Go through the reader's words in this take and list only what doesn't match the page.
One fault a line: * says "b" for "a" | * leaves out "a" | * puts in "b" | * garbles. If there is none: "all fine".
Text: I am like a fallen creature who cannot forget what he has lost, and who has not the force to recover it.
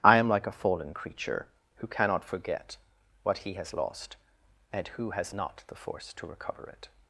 all fine